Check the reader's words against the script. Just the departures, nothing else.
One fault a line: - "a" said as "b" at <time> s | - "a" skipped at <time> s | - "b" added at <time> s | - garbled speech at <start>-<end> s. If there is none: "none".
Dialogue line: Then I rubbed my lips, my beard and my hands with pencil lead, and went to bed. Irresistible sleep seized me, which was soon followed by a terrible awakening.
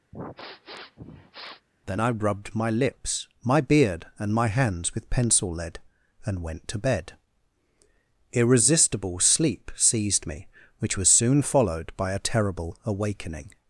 none